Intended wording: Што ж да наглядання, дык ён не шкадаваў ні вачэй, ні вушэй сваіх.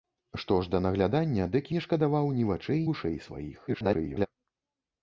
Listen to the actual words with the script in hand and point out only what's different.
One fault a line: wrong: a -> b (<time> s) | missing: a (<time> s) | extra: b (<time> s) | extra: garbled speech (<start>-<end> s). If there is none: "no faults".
missing: ён (1.7 s)
missing: ні (2.8 s)
extra: garbled speech (3.7-4.3 s)